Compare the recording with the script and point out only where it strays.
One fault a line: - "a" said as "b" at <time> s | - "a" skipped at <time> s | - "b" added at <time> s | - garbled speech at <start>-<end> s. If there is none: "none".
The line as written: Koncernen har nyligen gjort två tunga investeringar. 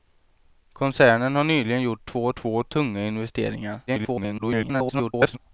- "två" added at 2.4 s
- garbled speech at 3.9-5.4 s